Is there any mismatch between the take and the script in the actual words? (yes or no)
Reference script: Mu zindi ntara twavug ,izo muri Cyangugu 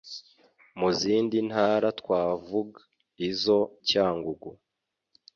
yes